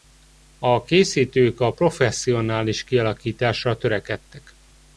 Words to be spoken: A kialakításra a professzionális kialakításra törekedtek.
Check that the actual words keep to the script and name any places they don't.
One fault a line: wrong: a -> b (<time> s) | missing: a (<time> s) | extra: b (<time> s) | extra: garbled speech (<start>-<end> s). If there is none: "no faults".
wrong: kialakításra -> készítők (0.8 s)